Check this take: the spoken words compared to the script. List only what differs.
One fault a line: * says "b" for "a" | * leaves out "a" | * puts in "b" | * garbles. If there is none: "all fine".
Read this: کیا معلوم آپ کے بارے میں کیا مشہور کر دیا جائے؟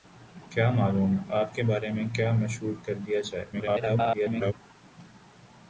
* garbles